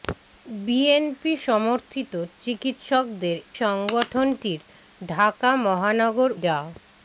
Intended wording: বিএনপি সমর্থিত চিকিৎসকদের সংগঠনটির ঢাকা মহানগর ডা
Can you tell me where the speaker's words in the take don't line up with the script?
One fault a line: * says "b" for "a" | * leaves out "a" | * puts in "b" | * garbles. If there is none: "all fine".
all fine